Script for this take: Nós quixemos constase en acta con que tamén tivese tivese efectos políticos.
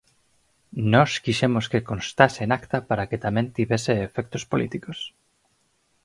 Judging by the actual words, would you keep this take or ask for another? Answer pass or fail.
fail